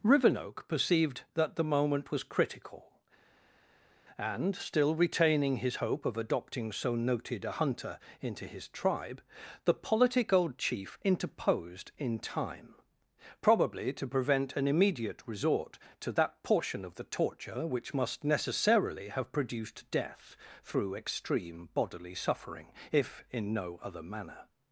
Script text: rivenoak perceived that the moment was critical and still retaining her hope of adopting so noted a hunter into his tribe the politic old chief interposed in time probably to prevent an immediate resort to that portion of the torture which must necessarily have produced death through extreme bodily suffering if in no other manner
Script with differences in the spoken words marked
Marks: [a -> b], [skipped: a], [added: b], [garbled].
rivenoak perceived that the moment was critical and still retaining [her -> his] hope of adopting so noted a hunter into his tribe the politic old chief interposed in time probably to prevent an immediate resort to that portion of the torture which must necessarily have produced death through extreme bodily suffering if in no other manner